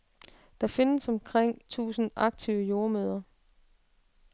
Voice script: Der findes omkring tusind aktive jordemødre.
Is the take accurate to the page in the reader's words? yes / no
yes